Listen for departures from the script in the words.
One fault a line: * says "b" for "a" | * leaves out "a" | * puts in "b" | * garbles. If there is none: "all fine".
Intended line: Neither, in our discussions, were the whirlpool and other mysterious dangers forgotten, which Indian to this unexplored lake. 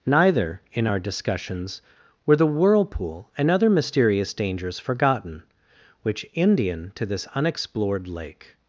all fine